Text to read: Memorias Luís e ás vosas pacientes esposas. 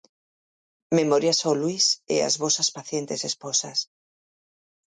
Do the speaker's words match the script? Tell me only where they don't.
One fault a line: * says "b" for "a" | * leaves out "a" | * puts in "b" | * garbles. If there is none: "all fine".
* puts in "ao"